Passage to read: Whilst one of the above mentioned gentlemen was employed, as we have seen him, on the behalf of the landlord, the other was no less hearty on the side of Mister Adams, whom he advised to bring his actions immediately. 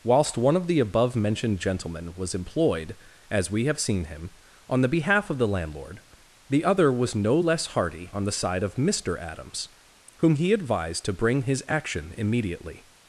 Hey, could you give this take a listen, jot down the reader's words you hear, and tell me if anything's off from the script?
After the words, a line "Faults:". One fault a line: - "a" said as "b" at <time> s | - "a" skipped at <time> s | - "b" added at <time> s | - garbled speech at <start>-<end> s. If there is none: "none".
Whilst one of the above mentioned gentlemen was employed, as we have seen him, on the behalf of the landlord, the other was no less hearty on the side of Mister Adams, whom he advised to bring his action immediately.
Faults:
- "actions" said as "action" at 11.7 s